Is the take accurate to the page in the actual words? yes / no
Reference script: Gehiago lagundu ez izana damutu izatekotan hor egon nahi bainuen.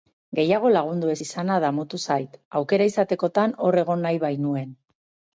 no